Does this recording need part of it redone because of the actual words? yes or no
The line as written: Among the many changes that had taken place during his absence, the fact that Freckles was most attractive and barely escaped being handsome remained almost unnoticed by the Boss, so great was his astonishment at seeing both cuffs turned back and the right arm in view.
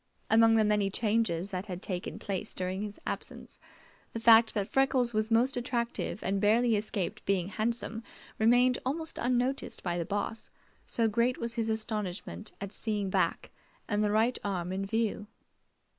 yes